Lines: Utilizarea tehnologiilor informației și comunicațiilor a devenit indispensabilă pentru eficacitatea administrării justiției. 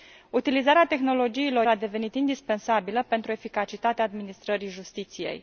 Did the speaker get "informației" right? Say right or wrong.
wrong